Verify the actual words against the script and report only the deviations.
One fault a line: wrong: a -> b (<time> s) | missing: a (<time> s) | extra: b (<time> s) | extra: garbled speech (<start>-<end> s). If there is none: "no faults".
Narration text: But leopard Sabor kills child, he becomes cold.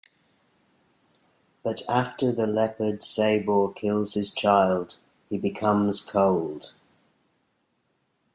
extra: after the (1.9 s)
extra: his (4.1 s)